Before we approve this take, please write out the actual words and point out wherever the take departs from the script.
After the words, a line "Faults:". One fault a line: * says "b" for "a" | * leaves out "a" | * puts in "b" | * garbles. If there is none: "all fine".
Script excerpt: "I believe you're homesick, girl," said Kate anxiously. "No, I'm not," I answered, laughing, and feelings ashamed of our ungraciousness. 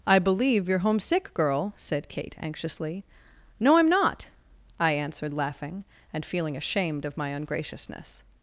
"I believe you're homesick, girl," said Kate anxiously. "No, I'm not," I answered, laughing, and feeling ashamed of my ungraciousness.
Faults:
* says "feeling" for "feelings"
* says "my" for "our"